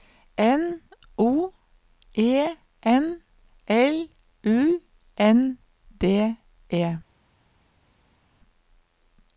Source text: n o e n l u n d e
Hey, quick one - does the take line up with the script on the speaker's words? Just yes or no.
yes